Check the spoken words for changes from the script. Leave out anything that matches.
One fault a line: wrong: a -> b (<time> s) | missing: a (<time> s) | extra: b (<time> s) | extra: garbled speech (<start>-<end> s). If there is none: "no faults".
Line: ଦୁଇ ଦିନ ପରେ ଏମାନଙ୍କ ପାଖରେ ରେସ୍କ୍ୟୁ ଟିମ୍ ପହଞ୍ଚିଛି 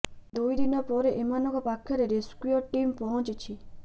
no faults